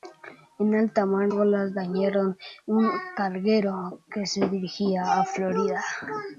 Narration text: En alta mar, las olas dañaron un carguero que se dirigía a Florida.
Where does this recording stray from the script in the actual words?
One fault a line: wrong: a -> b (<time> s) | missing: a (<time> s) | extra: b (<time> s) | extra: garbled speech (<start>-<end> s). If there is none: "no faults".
missing: las (1.3 s)